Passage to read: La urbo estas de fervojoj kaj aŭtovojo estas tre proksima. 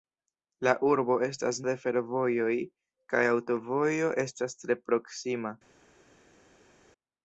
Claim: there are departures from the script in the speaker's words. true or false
false